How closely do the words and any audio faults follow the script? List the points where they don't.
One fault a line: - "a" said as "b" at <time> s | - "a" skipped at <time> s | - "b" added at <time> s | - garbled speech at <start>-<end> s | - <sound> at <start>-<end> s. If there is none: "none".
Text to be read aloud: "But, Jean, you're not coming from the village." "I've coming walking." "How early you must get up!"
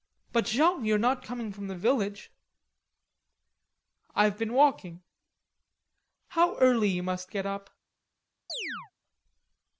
- "coming" said as "been" at 4.3 s
- chirp at 8.5-8.9 s